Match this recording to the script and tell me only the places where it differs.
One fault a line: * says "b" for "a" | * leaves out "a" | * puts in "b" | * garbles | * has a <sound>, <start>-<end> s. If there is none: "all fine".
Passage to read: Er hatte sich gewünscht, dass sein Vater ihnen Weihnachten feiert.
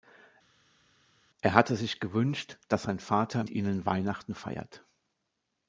all fine